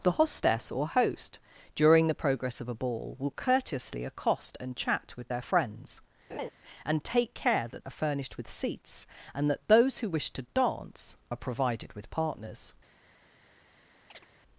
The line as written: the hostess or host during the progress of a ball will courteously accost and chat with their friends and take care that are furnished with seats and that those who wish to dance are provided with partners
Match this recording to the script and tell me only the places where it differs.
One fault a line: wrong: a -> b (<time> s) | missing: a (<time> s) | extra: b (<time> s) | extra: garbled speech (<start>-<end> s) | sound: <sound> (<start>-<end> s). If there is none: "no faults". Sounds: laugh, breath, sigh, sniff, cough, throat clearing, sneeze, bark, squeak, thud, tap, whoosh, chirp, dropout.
sound: laugh (6.3-6.5 s)
sound: chirp (14.1-14.3 s)